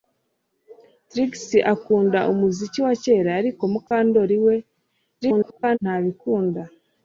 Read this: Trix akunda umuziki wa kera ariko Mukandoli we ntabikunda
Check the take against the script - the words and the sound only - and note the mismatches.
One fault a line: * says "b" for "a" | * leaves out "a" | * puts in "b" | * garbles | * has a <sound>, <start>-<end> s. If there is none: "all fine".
* has a dropout, 3.9-3.9 s
* garbles